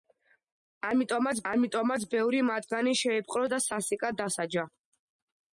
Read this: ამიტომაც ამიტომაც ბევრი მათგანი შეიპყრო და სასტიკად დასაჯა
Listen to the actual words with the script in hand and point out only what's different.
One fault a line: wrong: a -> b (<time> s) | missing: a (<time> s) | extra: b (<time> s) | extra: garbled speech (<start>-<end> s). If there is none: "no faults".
no faults